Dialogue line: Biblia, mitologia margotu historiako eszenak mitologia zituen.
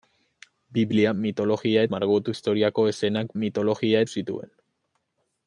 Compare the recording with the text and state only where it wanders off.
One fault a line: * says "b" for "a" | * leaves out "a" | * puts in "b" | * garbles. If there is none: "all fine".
all fine